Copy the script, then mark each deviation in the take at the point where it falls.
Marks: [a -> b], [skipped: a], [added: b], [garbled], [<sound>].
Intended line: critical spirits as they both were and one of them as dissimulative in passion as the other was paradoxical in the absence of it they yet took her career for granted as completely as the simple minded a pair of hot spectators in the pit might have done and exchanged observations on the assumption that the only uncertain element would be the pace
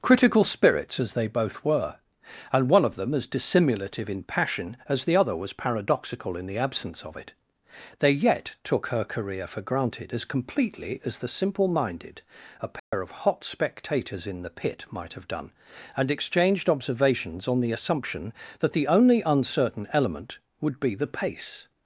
critical spirits as they both were and one of them as dissimulative in passion as the other was paradoxical in the absence of it they yet took her career for granted as completely as the simple minded a pair [dropout] of hot spectators in the pit might have done and exchanged observations on the assumption that the only uncertain element would be the pace